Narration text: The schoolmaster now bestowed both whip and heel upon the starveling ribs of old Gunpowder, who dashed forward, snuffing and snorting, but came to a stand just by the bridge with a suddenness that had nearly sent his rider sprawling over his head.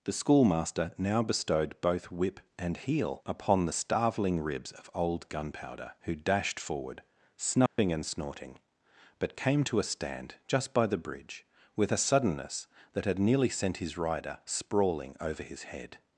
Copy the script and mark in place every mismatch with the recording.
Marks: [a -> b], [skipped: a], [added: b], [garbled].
The schoolmaster now bestowed both whip and heel upon the starveling ribs of old Gunpowder, who dashed forward, snuffing and snorting, but came to a stand just by the bridge with a suddenness that had nearly sent his rider sprawling over his head.